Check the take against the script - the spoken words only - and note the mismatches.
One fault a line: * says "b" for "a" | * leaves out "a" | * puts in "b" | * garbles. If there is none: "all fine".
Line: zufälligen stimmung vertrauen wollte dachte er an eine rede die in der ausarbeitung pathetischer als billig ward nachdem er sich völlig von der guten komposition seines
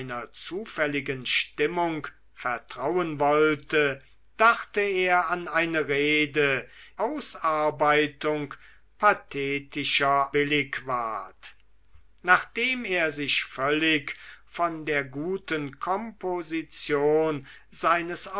* leaves out "die in der"
* leaves out "als"